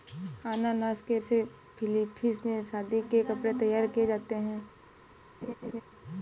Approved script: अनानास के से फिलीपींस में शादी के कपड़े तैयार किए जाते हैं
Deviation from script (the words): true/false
false